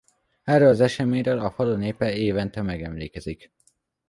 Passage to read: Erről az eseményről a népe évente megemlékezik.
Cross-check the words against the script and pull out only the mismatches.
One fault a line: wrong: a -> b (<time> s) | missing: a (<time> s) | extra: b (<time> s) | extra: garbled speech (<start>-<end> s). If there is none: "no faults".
extra: falu (1.5 s)